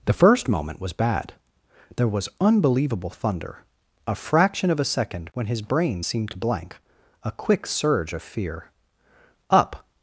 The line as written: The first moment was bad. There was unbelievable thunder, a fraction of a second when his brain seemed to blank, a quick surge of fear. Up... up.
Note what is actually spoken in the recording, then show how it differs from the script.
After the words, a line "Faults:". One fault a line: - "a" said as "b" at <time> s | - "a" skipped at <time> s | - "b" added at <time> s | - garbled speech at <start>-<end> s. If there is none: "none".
The first moment was bad. There was unbelievable thunder, a fraction of a second when his brain seemed to blank, a quick surge of fear. Up.
Faults:
- "up" skipped at 9.8 s